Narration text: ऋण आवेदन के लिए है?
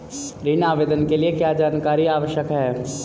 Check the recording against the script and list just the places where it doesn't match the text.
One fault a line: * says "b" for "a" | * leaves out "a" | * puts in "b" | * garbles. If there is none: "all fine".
* puts in "क्या जानकारी आवश्यक"